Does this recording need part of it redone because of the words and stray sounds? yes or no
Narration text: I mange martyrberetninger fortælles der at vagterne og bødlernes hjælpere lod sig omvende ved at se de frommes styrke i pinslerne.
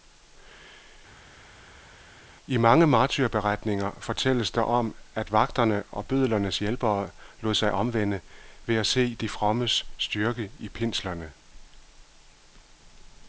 yes